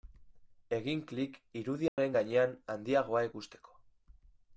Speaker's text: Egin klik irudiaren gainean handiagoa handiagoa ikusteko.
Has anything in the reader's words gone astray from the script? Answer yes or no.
yes